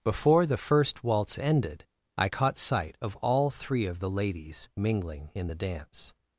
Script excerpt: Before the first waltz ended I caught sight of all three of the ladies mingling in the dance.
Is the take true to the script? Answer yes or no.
yes